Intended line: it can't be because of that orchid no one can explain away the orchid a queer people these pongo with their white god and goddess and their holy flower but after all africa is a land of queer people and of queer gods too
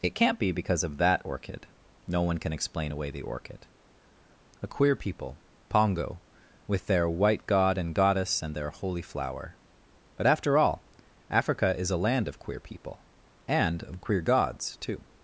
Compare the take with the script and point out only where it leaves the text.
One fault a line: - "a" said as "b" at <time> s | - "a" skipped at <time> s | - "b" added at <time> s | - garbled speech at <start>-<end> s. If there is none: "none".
- "these" skipped at 5.4 s